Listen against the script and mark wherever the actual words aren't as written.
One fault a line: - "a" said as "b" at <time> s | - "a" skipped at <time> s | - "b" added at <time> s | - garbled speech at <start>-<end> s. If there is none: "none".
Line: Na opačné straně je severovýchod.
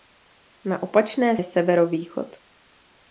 - "straně" skipped at 1.4 s